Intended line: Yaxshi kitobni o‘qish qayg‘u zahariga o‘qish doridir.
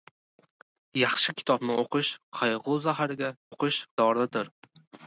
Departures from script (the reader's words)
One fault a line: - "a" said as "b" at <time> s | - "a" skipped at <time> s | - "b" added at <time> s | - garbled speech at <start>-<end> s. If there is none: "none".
none